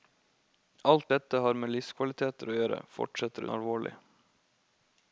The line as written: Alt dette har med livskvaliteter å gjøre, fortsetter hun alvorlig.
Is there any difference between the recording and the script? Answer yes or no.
yes